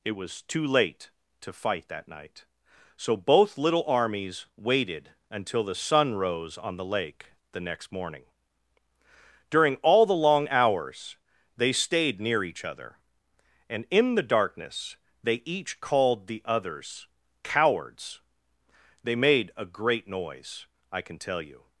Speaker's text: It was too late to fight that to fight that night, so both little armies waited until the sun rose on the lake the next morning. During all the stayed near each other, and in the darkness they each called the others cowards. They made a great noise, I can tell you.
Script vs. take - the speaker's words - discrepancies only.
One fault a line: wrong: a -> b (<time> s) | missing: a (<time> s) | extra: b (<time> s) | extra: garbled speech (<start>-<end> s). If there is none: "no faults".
missing: to fight that (2.1 s)
extra: long hours they (10.2 s)